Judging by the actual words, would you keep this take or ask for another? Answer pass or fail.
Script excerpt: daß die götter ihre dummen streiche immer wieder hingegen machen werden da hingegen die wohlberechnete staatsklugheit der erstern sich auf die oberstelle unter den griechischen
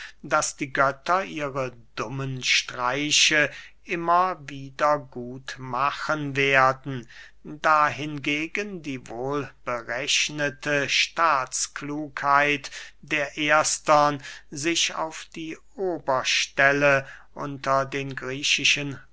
fail